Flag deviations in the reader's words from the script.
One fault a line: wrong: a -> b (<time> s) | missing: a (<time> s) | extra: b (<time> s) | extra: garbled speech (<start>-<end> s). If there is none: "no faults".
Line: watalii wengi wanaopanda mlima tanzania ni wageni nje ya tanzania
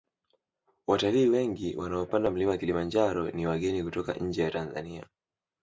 wrong: tanzania -> kilimanjaro (2.6 s)
extra: kutoka (3.8 s)